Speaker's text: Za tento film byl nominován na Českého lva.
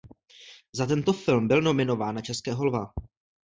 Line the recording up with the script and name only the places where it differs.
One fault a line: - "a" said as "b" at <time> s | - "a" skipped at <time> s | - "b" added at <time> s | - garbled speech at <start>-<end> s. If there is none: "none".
none